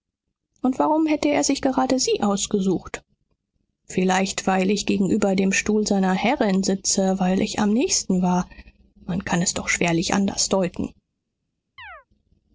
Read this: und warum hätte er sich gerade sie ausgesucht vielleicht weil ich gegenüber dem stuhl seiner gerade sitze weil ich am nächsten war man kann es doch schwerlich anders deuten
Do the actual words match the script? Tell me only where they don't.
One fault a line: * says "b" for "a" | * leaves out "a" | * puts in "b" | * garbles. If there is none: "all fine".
* says "herrin" for "gerade"